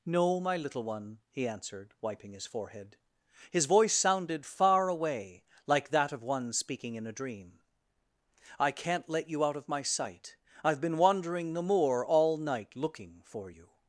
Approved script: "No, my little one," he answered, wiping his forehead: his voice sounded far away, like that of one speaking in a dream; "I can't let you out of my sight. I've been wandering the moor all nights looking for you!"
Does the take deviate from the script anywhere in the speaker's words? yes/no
yes